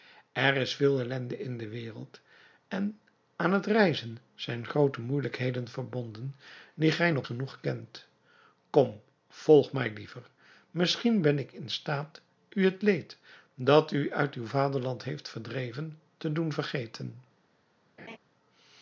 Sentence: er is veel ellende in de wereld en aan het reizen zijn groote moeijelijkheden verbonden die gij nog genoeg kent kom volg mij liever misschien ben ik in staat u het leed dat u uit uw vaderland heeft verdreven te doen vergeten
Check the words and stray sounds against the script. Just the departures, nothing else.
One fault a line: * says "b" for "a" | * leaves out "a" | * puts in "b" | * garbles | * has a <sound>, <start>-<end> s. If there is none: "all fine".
* has a laugh, 18.0-18.2 s